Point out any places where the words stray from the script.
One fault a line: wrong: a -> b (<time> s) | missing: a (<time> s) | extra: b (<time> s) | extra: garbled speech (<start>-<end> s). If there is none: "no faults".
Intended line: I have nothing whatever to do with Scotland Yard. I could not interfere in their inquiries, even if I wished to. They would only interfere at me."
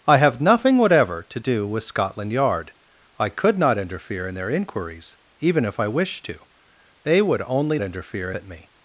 no faults